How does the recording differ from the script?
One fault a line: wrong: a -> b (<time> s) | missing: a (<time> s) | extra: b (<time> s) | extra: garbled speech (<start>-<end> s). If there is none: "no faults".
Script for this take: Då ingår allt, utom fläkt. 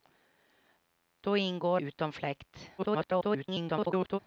missing: allt (1.8 s)
extra: garbled speech (2.8-4.2 s)